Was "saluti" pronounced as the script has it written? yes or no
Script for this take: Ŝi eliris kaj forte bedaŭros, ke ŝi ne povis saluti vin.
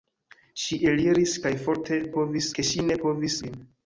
no